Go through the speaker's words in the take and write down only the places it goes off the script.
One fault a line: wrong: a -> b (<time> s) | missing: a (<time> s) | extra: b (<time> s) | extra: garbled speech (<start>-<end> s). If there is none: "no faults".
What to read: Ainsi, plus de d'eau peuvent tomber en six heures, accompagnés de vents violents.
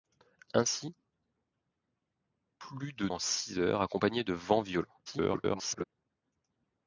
missing: d'eau peuvent tomber (3.1 s)
extra: garbled speech (5.1-5.8 s)